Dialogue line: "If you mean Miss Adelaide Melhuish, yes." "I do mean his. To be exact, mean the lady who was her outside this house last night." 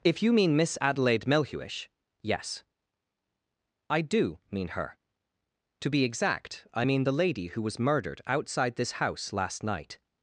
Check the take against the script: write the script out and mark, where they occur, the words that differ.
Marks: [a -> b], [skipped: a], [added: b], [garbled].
"If you mean Miss Adelaide Melhuish, yes." "I do mean [his. -> her] To be exact, [added: I] mean the lady who was [her -> murdered] outside this house last night."